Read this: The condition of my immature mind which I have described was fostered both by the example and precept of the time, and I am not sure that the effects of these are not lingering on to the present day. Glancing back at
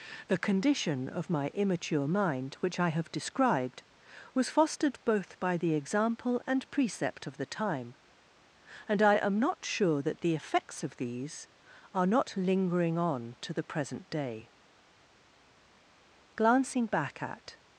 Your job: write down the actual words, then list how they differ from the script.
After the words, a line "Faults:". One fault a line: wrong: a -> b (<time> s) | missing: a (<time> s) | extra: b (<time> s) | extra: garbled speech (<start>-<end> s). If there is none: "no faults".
The condition of my immature mind which I have described was fostered both by the example and precept of the time, and I am not sure that the effects of these are not lingering on to the present day. Glancing back at
Faults:
no faults